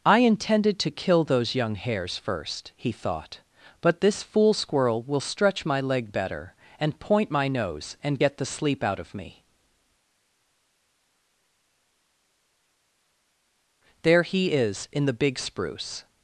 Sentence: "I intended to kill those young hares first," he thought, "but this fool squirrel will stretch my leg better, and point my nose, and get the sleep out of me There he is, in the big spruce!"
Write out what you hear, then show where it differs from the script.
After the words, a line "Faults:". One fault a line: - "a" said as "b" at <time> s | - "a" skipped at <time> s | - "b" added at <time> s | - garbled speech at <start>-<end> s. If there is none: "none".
"I intended to kill those young hares first," he thought, "but this fool squirrel will stretch my leg better, and point my nose, and get the sleep out of me There he is, in the big spruce!"
Faults:
none